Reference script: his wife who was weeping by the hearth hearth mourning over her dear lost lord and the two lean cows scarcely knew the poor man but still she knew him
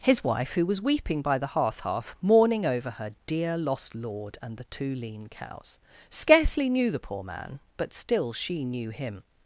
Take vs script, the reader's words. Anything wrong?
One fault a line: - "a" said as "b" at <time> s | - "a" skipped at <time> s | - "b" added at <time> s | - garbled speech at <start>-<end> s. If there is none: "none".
none